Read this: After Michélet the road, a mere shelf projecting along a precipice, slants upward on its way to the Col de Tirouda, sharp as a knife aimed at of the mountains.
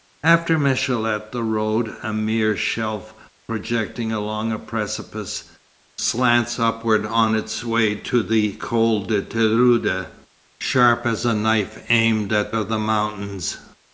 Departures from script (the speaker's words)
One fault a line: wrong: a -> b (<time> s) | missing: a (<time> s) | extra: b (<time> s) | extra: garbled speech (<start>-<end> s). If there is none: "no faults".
no faults